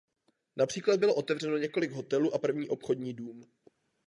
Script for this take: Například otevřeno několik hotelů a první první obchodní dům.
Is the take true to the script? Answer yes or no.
no